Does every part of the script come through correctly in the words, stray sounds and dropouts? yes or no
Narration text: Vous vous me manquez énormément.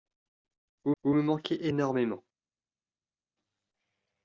yes